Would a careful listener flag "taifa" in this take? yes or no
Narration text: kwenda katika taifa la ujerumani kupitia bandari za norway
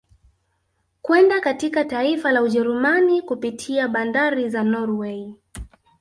no